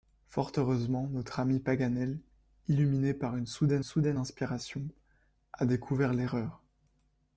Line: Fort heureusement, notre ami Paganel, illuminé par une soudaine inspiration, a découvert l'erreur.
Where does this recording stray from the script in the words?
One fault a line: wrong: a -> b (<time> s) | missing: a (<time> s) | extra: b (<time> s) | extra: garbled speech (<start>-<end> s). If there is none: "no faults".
extra: soudaine (3.8 s)